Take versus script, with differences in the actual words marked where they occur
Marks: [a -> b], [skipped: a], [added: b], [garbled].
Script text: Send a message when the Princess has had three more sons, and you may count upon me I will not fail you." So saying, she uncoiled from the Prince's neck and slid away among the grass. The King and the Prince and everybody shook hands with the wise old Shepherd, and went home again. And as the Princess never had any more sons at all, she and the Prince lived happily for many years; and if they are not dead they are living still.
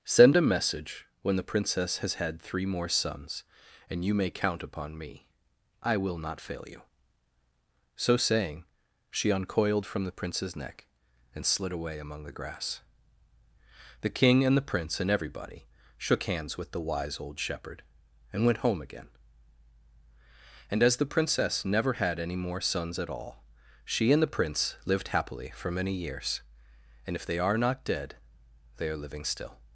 Send a message when the Princess has had three more sons, and you may count upon me I will not fail you." So saying, she uncoiled from the Prince's neck and slid away among the grass. The King and the Prince and everybody shook hands with the wise old Shepherd, and went home again. And as the Princess never had any more sons at all, she and the Prince lived happily for many years; and if they are not dead they are living still.